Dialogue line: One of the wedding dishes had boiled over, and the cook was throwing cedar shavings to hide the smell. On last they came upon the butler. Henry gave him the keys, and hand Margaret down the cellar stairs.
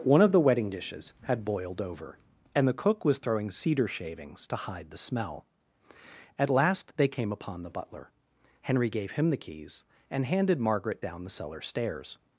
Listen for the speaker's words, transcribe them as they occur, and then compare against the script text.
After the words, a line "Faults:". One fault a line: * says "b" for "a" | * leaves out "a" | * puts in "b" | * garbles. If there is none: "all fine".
One of the wedding dishes had boiled over, and the cook was throwing cedar shavings to hide the smell. At last they came upon the butler. Henry gave him the keys, and handed Margaret down the cellar stairs.
Faults:
* says "At" for "On"
* says "handed" for "hand"